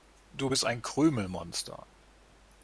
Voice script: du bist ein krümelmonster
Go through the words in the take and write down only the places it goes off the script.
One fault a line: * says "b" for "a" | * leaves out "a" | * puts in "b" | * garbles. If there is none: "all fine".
all fine